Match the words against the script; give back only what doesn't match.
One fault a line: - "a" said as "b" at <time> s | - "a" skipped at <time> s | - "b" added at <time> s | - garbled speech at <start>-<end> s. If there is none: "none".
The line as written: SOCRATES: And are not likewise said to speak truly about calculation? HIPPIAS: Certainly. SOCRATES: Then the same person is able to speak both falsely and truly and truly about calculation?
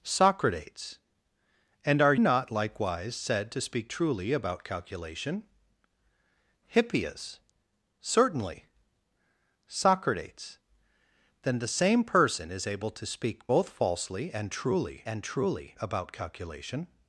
none